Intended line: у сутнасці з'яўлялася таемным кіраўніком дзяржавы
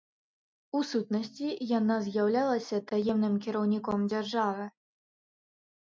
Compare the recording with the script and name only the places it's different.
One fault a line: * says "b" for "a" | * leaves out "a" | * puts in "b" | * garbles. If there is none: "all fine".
* puts in "яна"